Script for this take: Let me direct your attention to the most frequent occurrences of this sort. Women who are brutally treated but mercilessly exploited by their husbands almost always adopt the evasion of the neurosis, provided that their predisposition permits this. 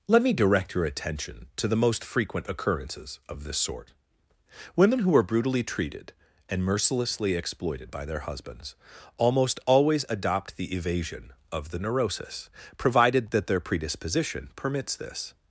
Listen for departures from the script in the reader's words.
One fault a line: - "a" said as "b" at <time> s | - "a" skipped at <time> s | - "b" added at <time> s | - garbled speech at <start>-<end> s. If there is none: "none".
- "but" said as "and" at 6.5 s